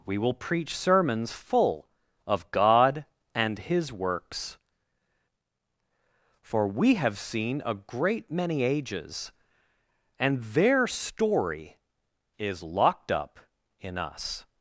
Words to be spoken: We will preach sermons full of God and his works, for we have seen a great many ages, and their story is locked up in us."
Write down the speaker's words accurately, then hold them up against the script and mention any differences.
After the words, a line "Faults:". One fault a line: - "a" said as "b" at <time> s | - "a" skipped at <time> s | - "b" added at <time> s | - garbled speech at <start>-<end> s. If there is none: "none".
We will preach sermons full of God and his works, for we have seen a great many ages, and their story is locked up in us."
Faults:
none